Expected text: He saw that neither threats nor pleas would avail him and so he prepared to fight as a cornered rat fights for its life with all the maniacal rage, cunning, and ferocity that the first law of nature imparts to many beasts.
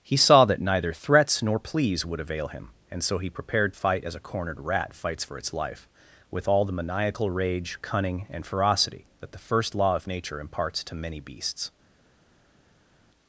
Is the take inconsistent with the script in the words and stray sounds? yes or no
yes